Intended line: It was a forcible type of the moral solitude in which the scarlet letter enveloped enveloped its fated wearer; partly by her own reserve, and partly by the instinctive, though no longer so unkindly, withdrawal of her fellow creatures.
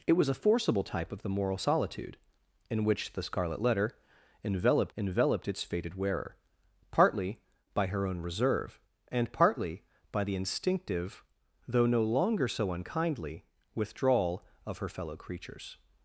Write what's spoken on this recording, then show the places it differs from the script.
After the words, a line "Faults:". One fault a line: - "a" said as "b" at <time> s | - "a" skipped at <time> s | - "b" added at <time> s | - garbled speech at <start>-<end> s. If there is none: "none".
It was a forcible type of the moral solitude in which the scarlet letter enveloped enveloped its fated wearer; partly by her own reserve, and partly by the instinctive, though no longer so unkindly, withdrawal of her fellow creatures.
Faults:
none